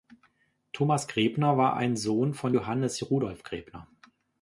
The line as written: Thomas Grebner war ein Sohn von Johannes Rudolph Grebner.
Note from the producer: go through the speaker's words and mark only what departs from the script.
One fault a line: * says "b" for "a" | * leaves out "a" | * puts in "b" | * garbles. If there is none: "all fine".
all fine